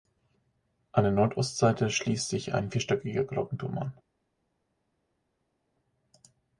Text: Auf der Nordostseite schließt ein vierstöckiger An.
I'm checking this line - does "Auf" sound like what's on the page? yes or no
no